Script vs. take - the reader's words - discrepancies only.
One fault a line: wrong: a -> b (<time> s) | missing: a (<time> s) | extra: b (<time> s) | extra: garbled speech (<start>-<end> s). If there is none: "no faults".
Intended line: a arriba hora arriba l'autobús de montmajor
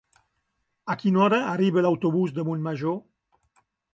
wrong: arriba -> quina (1.0 s)